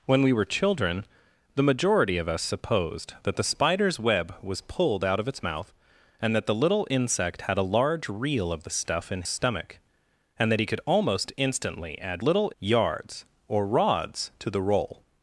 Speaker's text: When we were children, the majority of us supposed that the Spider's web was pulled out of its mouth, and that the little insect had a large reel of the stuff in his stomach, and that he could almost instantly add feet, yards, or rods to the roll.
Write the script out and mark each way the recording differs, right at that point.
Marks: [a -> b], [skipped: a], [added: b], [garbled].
When we were children, the majority of us supposed that the Spider's web was pulled out of its mouth, and that the little insect had a large reel of the stuff in [skipped: his] stomach, and that he could almost instantly add [feet, -> little] yards, or rods to the roll.